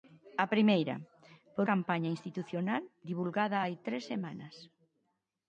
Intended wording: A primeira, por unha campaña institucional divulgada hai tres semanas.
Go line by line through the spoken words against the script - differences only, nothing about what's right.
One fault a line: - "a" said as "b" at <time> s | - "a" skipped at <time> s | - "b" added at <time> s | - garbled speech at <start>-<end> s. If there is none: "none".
- "unha" skipped at 1.6 s